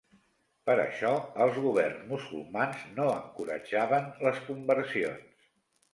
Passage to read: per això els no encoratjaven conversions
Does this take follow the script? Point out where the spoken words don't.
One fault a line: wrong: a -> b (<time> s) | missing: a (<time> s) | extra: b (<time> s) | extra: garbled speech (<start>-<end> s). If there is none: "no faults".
extra: governs musulmans (1.6 s)
extra: les (4.3 s)